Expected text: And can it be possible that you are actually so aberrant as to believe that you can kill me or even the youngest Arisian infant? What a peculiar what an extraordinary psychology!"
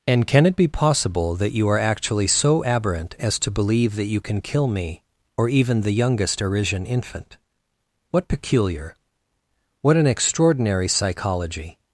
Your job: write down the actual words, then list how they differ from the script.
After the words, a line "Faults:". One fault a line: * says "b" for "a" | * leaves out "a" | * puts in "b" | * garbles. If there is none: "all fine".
And can it be possible that you are actually so aberrant as to believe that you can kill me or even the youngest Arisian infant? What peculiar what an extraordinary psychology!"
Faults:
* leaves out "a"